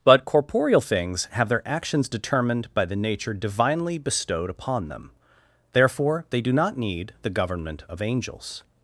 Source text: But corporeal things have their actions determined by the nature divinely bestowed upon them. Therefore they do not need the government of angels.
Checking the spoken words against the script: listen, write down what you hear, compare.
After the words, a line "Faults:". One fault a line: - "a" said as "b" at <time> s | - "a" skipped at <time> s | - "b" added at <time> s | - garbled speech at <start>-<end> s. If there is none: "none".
But corporeal things have their actions determined by the nature divinely bestowed upon them. Therefore they do not need the government of angels.
Faults:
none